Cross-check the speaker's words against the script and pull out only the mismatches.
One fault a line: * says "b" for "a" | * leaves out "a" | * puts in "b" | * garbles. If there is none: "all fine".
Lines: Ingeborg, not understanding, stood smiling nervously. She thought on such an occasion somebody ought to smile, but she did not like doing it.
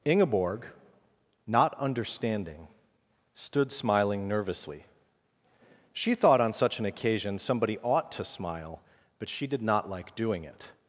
all fine